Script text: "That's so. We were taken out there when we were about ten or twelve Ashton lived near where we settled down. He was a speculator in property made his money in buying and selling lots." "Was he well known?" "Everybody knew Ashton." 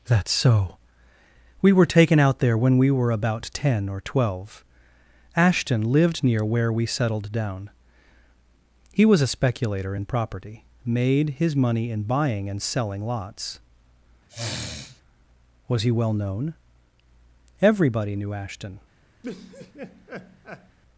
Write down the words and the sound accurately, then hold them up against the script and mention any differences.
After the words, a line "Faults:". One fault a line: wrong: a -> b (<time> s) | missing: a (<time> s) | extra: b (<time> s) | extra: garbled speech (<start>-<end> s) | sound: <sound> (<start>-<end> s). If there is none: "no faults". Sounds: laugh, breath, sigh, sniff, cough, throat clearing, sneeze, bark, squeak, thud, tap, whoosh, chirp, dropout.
"That's so. We were taken out there when we were about ten or twelve Ashton lived near where we settled down. He was a speculator in property made his money in buying and selling lots." "Was he well known?" "Everybody knew Ashton."
Faults:
sound: sniff (14.3-15.0 s)
sound: laugh (19.2-20.8 s)